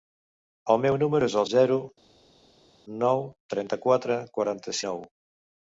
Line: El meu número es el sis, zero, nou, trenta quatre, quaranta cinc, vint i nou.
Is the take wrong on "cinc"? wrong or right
wrong